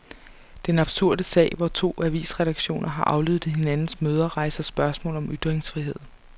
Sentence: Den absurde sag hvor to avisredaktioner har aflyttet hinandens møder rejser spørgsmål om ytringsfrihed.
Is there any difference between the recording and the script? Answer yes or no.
no